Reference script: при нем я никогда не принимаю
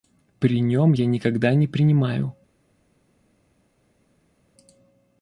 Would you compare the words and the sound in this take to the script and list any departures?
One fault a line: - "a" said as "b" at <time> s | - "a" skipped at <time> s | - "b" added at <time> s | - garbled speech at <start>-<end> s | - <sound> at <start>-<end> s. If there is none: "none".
none